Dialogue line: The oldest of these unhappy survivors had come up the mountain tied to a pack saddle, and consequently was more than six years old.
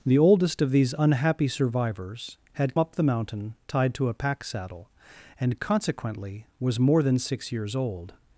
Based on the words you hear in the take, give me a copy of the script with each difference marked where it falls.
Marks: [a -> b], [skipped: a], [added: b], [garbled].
The oldest of these unhappy survivors had [skipped: come] up the mountain tied to a pack saddle, and consequently was more than six years old.